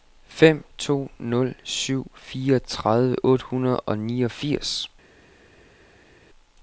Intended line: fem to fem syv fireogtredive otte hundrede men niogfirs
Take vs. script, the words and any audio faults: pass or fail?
fail